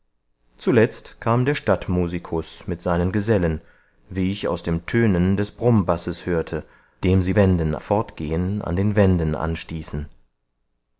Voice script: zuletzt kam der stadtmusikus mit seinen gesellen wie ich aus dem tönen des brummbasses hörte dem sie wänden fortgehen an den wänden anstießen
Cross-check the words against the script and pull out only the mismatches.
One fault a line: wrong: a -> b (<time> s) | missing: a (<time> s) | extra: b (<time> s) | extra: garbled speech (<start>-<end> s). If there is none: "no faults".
no faults